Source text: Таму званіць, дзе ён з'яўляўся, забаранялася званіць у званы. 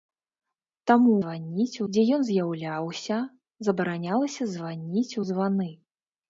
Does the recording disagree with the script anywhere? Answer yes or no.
no